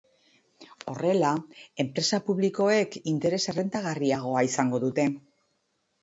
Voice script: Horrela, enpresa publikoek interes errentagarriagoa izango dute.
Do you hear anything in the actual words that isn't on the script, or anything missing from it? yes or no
no